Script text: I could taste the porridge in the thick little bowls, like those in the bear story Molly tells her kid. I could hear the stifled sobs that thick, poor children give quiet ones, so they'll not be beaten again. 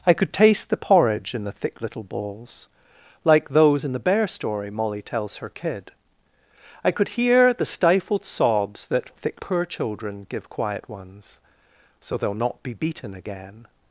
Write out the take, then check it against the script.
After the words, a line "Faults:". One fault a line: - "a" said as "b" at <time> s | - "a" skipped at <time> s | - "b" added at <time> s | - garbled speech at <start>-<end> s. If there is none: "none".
I could taste the porridge in the thick little bowls, like those in the bear story Molly tells her kid. I could hear the stifled sobs that thick, poor children give quiet ones, so they'll not be beaten again.
Faults:
none